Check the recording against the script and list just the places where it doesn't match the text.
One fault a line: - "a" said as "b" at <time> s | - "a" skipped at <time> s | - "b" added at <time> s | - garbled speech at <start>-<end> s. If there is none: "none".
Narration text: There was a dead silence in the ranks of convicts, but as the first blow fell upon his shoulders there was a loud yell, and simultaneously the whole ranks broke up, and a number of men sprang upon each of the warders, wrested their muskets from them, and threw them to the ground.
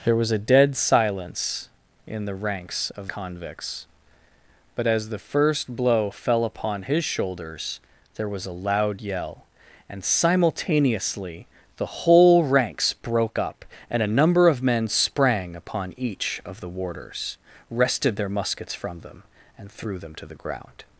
none